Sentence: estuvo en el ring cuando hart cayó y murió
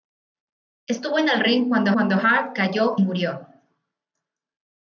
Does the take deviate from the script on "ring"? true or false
false